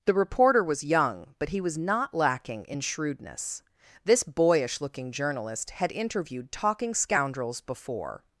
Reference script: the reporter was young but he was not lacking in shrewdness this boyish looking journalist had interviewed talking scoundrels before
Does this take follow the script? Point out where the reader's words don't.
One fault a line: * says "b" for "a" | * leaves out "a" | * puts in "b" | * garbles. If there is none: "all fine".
all fine